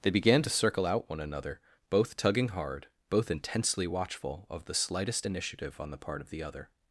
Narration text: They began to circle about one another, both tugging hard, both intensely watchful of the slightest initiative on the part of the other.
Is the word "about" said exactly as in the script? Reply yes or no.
no